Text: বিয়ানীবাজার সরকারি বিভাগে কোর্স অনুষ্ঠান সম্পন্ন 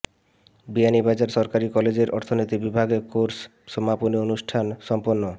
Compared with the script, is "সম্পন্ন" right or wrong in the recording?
right